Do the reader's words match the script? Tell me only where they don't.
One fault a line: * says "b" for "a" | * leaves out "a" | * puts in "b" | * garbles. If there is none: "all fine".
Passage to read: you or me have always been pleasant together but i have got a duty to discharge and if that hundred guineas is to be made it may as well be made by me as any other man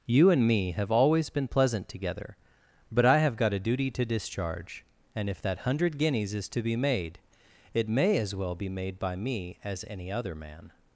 * says "and" for "or"